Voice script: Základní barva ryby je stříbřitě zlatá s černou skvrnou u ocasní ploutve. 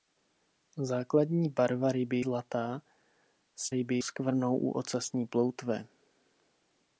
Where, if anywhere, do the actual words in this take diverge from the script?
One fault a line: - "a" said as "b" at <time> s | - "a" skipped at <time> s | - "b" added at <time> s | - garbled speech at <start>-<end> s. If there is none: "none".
- "je stříbřitě" skipped at 2.2 s
- "černou" said as "ryby" at 3.7 s